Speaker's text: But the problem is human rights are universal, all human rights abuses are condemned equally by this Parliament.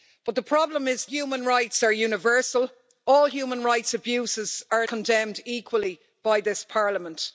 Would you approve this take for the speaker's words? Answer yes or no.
yes